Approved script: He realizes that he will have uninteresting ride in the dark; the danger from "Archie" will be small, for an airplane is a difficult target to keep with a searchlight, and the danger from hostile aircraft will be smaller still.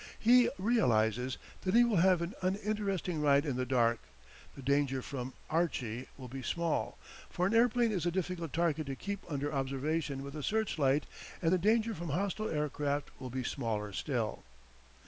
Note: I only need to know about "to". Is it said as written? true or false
true